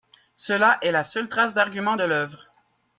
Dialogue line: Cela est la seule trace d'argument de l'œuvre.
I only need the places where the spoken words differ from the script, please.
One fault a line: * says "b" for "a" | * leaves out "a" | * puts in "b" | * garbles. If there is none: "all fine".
all fine